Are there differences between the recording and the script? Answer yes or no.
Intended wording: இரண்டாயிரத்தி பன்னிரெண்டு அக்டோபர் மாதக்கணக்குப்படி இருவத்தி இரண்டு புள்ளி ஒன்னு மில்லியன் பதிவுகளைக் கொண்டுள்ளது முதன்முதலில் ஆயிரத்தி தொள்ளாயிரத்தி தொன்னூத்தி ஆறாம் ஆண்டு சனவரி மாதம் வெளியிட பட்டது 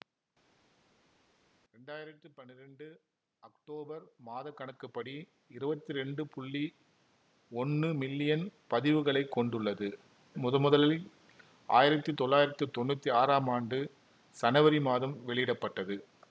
no